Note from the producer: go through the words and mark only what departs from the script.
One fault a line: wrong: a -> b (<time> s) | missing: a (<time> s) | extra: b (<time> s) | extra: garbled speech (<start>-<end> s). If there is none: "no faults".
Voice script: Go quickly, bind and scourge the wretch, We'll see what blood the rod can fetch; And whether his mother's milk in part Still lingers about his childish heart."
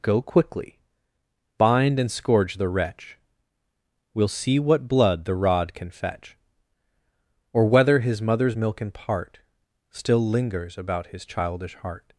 wrong: And -> Or (7.5 s)